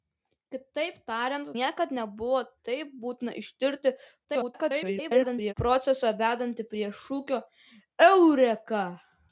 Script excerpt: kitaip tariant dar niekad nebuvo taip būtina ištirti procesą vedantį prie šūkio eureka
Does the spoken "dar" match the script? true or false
false